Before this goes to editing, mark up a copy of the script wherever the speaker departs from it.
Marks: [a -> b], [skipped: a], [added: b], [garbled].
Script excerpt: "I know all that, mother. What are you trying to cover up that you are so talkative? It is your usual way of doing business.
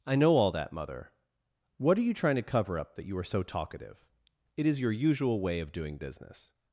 "I know all that, mother. What are you trying to cover up that you are so talkative? It is your usual way of doing business.